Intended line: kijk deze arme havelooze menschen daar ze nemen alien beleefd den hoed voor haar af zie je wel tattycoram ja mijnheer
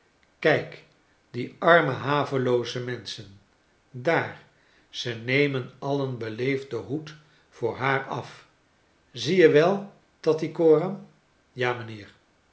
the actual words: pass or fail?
fail